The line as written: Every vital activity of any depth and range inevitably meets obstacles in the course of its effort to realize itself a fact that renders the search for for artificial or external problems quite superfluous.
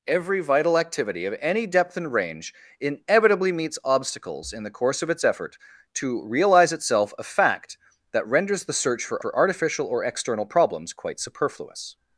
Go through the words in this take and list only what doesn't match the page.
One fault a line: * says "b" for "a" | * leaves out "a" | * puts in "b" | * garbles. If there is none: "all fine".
all fine